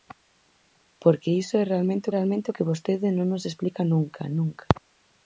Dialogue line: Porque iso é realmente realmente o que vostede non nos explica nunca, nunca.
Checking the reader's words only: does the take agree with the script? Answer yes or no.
yes